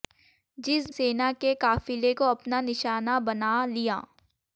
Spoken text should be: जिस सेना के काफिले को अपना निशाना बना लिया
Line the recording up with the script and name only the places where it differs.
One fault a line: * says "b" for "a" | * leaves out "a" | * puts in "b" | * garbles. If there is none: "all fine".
all fine